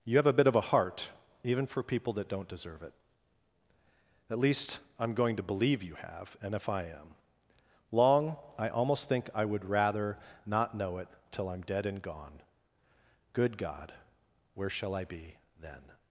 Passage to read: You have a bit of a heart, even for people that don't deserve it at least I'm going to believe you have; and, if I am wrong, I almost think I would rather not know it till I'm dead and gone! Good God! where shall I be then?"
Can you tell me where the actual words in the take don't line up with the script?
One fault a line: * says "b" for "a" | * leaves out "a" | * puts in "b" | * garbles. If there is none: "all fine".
* says "long" for "wrong"